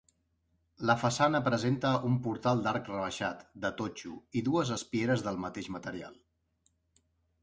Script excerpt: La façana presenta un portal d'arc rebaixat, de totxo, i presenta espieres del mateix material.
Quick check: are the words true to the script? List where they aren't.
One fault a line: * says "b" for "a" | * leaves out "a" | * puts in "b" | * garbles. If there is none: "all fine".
* says "dues" for "presenta"